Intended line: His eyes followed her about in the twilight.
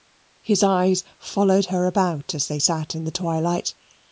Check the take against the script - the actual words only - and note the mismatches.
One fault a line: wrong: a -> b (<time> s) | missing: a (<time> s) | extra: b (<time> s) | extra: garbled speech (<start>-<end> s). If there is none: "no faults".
extra: as they sat (2.3 s)